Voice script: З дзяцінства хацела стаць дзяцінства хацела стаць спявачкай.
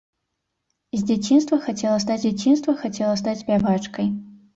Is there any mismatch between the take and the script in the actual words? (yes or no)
no